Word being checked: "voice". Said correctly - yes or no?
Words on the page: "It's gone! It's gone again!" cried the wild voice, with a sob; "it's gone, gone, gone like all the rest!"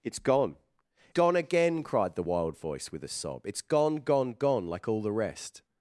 yes